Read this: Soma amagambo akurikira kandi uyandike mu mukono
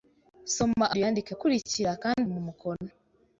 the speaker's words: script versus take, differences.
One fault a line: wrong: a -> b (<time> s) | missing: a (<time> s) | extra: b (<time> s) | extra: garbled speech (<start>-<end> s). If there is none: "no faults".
wrong: amagambo -> uyandike (1.0 s)
missing: uyandike (2.3 s)